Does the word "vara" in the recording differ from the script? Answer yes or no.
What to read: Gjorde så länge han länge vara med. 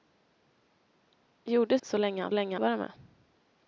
no